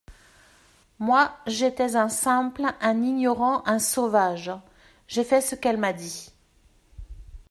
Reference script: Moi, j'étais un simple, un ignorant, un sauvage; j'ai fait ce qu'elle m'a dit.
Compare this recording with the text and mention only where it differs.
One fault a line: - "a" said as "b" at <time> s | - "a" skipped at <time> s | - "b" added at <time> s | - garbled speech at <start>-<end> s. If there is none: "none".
none